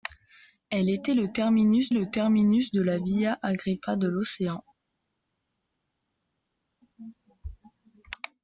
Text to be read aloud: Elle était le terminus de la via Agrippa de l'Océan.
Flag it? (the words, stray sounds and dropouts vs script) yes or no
yes